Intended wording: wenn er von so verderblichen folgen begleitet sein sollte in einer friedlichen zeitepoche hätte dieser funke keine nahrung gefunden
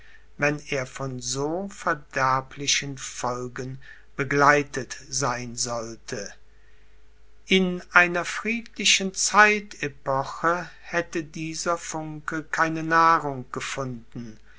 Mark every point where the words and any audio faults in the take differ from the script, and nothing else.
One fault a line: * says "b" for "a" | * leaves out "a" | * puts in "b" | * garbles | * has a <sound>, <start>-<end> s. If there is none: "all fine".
all fine